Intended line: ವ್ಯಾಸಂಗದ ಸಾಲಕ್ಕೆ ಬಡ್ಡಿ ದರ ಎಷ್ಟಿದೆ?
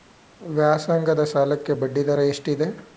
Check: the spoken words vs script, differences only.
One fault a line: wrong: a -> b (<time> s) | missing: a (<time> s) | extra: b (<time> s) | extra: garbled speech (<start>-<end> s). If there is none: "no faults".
no faults